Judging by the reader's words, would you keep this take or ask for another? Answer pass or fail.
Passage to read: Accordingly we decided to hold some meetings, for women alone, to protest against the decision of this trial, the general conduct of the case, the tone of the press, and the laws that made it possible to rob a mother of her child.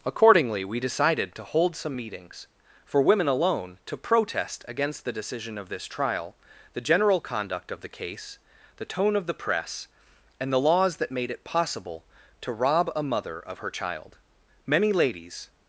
fail